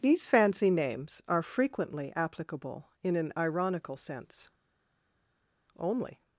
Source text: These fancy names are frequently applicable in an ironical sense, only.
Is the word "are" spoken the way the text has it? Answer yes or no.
yes